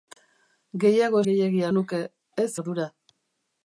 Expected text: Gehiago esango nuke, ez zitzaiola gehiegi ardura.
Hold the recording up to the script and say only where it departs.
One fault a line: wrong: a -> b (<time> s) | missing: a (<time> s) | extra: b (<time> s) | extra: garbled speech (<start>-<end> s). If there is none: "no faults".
wrong: esango -> gehiegi (1.3 s)
missing: zitzaiola gehiegi (2.5 s)